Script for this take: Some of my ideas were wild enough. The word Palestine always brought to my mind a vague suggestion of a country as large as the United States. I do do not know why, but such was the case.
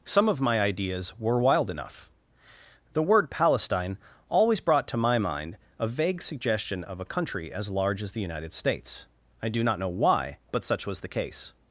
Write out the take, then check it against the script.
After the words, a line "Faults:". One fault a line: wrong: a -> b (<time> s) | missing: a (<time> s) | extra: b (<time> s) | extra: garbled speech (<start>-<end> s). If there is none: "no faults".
Some of my ideas were wild enough. The word Palestine always brought to my mind a vague suggestion of a country as large as the United States. I do not know why, but such was the case.
Faults:
missing: do (9.6 s)